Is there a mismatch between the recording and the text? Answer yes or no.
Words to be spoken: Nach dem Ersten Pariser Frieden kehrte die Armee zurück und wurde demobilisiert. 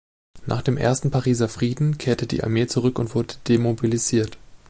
no